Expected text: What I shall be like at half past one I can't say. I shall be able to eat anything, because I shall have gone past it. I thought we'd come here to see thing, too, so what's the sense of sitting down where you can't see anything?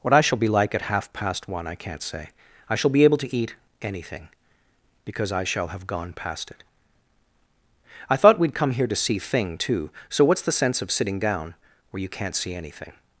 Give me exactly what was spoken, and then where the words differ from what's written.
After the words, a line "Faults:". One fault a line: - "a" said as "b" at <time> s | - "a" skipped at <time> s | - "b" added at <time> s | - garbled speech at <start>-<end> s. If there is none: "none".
What I shall be like at half past one I can't say. I shall be able to eat anything, because I shall have gone past it. I thought we'd come here to see thing, too, so what's the sense of sitting down where you can't see anything?
Faults:
none